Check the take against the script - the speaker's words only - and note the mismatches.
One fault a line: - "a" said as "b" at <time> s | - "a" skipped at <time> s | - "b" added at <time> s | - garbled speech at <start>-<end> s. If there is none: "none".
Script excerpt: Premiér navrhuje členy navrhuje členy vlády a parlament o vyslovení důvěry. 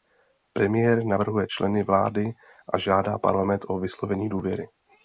- "navrhuje členy" skipped at 1.8 s
- "žádá" added at 2.8 s